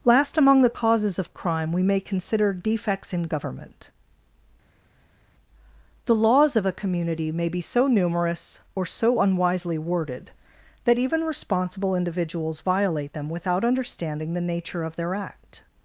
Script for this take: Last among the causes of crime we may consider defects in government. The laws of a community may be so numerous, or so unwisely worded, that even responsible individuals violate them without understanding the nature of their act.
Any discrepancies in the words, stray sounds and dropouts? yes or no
no